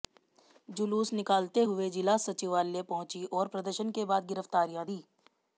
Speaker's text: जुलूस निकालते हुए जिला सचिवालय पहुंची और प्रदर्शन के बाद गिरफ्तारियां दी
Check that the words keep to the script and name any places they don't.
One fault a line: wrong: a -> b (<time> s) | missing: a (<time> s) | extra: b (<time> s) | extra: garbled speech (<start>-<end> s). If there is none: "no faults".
no faults